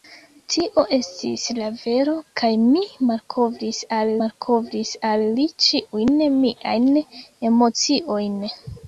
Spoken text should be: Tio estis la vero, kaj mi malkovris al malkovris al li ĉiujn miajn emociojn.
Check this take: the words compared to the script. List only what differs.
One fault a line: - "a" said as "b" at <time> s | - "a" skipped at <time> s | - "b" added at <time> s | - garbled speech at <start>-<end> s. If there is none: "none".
none